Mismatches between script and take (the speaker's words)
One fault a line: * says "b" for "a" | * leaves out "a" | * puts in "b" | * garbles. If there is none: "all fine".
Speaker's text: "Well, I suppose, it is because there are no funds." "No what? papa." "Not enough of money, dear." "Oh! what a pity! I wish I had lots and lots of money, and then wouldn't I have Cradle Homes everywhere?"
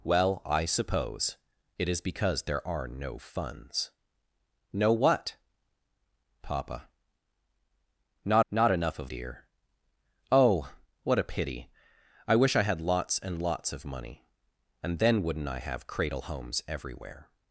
* puts in "not"
* leaves out "money"